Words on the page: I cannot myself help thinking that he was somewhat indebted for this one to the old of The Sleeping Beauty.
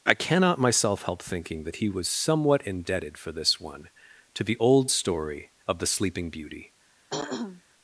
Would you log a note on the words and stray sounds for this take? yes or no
yes